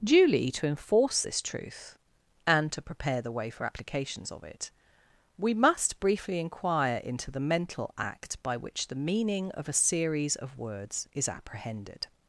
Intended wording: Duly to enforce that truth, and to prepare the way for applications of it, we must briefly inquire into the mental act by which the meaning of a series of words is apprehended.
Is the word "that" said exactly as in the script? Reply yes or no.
no